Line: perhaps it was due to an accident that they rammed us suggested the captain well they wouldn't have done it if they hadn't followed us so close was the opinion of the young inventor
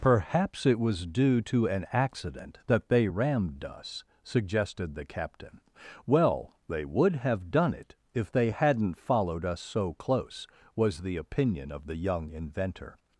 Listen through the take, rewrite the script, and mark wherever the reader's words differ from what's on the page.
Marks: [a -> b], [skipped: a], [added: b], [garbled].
perhaps it was due to an accident that they rammed us suggested the captain well they [wouldn't -> would] have done it if they hadn't followed us so close was the opinion of the young inventor